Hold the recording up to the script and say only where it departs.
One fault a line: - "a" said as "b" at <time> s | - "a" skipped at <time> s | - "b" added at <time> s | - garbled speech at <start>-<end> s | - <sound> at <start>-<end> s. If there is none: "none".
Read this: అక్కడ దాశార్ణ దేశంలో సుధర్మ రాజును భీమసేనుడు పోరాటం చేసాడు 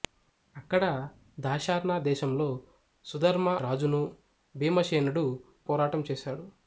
none